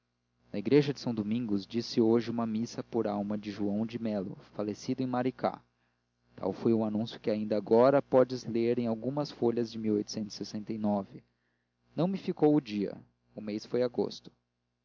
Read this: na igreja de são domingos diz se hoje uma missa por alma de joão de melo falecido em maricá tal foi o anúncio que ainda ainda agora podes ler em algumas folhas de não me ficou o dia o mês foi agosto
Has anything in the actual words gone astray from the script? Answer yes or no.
yes